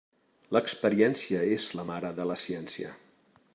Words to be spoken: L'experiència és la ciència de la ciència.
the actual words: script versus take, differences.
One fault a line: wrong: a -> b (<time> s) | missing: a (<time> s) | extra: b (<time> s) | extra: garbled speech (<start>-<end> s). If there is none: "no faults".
wrong: ciència -> mare (1.9 s)